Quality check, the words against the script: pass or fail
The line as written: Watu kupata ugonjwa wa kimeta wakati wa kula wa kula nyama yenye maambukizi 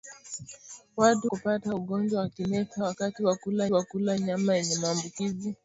pass